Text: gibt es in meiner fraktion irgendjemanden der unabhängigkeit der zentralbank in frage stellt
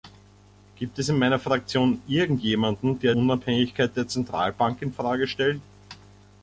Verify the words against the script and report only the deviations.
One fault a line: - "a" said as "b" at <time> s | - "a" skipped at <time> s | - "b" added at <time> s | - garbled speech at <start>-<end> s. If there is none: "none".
none